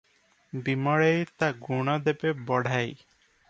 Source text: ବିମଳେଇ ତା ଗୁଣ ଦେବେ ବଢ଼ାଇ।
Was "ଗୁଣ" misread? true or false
false